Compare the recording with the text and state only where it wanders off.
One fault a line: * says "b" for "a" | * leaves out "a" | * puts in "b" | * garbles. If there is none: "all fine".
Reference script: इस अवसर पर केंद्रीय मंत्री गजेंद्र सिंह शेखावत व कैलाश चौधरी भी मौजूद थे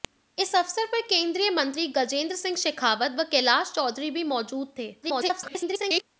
* garbles